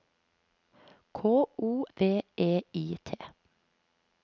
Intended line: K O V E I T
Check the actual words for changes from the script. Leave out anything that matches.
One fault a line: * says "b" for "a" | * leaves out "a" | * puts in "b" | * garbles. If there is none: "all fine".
all fine